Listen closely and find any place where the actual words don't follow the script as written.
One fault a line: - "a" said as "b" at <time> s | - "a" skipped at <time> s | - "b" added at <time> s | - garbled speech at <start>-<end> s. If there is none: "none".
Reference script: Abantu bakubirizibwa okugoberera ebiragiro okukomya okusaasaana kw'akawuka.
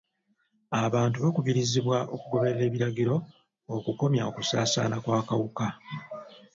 none